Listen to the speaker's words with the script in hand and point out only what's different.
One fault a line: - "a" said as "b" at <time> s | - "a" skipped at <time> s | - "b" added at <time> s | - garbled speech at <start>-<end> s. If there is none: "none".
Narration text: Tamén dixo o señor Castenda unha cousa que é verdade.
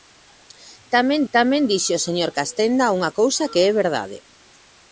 - "tamén" added at 1.3 s